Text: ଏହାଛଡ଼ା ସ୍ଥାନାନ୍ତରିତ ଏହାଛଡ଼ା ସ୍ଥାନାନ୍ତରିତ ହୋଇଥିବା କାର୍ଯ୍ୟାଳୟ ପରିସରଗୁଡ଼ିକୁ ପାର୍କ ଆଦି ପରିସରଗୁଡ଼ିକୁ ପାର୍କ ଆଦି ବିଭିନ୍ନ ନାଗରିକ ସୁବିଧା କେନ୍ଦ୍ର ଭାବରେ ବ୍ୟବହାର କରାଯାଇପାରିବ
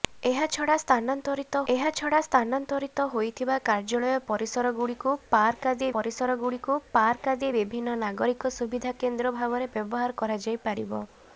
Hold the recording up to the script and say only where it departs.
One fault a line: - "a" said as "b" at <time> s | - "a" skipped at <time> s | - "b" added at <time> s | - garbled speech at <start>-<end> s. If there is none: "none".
none